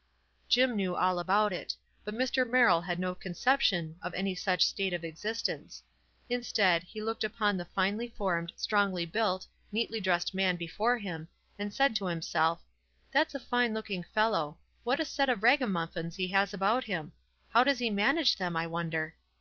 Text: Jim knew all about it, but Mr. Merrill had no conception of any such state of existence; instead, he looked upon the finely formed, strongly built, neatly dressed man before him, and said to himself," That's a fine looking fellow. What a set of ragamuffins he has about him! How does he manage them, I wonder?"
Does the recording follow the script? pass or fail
pass